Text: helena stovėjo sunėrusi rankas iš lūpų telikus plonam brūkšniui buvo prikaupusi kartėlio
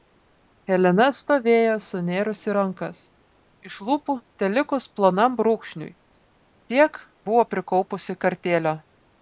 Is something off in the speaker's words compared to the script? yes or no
yes